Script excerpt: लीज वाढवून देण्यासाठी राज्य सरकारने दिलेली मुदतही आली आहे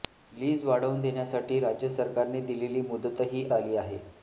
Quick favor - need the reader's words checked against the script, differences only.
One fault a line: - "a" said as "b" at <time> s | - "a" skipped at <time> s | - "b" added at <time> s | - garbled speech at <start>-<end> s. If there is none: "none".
none